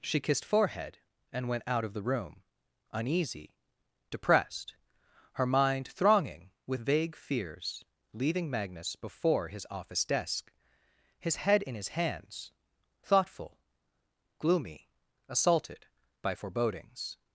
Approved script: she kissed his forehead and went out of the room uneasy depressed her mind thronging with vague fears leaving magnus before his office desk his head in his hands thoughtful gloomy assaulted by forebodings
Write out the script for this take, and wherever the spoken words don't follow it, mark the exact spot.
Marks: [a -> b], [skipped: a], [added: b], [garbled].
she kissed [skipped: his] forehead and went out of the room uneasy depressed her mind thronging with vague fears leaving magnus before his office desk his head in his hands thoughtful gloomy assaulted by forebodings